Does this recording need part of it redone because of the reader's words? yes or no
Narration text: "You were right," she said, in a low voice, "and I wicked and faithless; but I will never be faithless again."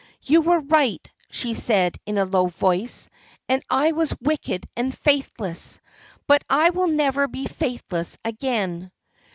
yes